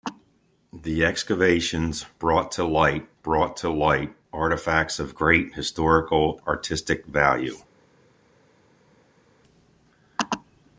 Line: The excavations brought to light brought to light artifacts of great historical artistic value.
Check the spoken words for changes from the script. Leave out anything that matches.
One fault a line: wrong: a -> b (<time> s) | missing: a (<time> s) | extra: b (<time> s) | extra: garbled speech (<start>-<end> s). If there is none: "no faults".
no faults